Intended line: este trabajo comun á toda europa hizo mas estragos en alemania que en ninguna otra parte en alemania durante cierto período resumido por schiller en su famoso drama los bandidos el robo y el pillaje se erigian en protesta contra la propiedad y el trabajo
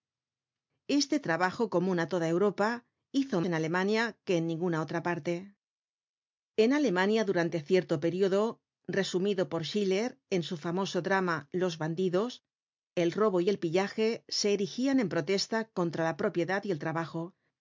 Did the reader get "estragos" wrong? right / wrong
wrong